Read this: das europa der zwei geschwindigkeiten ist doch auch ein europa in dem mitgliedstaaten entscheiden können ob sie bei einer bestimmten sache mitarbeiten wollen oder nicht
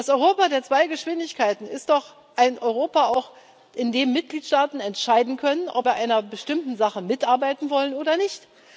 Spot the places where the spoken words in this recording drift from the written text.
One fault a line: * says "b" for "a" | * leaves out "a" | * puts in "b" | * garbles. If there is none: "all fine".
* leaves out "sie"